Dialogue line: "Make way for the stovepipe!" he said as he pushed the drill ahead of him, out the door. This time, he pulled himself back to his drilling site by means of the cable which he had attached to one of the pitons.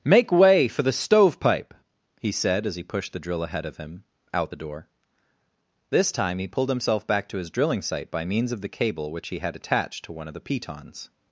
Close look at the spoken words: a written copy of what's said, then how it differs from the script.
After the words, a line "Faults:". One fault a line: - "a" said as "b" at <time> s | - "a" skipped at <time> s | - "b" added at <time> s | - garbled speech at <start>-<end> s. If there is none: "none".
"Make way for the stovepipe!" he said as he pushed the drill ahead of him, out the door. This time, he pulled himself back to his drilling site by means of the cable which he had attached to one of the pitons.
Faults:
none